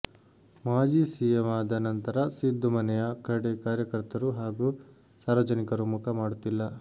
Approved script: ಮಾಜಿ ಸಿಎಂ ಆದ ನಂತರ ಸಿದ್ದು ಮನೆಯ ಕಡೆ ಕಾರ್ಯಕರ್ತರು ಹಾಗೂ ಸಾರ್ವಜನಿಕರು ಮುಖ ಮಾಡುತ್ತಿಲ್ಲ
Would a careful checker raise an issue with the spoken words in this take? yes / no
no